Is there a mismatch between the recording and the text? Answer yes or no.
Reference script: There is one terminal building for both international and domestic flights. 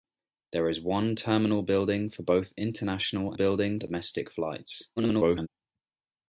yes